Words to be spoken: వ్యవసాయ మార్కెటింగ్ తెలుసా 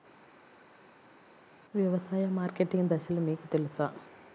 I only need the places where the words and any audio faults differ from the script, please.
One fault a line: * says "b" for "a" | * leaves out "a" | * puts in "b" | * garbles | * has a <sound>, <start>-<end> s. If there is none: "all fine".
* puts in "దశలు మీకు"